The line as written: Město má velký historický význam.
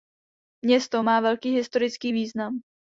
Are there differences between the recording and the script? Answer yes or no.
no